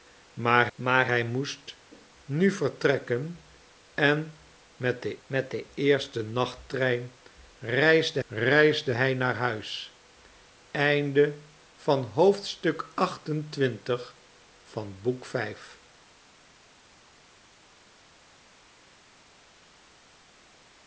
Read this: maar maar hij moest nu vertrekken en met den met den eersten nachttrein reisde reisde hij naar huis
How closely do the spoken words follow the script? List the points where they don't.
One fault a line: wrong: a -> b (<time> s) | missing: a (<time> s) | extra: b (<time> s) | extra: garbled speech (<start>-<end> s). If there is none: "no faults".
no faults